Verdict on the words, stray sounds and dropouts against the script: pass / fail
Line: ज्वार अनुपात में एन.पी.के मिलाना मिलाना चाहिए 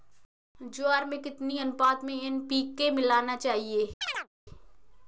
fail